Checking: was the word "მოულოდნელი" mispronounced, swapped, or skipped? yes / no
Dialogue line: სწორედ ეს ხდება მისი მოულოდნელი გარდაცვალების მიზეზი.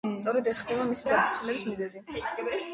yes